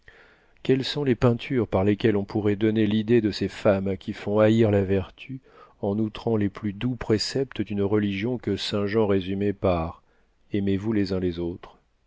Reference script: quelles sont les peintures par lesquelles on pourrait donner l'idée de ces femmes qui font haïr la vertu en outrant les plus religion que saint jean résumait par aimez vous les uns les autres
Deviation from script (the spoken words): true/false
true